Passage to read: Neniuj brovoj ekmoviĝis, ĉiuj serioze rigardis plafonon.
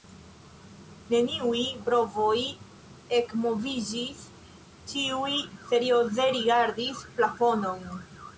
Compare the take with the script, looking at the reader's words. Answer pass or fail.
pass